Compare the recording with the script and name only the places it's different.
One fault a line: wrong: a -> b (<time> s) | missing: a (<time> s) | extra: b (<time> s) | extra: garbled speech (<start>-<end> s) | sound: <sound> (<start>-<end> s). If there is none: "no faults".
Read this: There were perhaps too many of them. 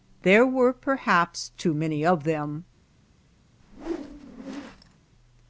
sound: whoosh (3.6-5.0 s)